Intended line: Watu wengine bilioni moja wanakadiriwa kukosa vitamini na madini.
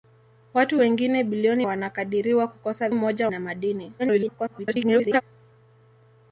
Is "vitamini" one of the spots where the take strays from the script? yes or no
yes